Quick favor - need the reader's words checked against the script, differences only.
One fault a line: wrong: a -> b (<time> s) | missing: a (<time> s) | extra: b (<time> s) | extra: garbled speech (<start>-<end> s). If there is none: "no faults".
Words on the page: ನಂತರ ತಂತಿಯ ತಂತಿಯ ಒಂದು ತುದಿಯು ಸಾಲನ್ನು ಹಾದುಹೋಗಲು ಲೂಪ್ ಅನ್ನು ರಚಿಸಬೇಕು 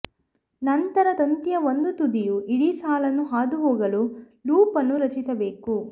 missing: ತಂತಿಯ (1.6 s)
extra: ಇಡೀ (2.5 s)